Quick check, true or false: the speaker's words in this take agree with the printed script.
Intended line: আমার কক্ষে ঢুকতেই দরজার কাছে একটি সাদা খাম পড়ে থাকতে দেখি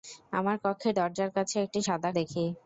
false